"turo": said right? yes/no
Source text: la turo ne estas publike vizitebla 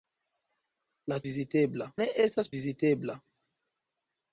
no